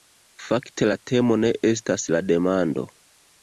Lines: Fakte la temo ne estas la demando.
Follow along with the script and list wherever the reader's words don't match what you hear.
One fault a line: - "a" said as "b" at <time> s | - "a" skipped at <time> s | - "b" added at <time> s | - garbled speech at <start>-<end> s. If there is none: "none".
none